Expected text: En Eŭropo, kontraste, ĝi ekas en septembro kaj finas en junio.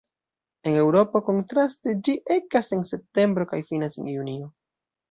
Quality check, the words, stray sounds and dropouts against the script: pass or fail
pass